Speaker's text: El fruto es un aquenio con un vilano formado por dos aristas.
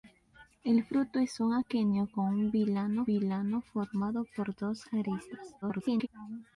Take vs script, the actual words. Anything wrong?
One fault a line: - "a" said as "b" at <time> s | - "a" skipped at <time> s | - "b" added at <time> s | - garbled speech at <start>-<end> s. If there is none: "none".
- "vilano" added at 3.0 s
- garbled speech at 5.6-6.1 s